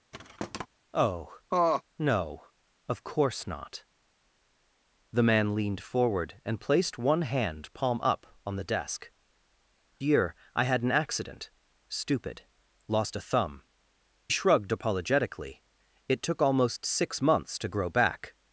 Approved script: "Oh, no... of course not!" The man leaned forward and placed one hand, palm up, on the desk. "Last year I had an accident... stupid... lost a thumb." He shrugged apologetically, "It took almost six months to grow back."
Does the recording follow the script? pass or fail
fail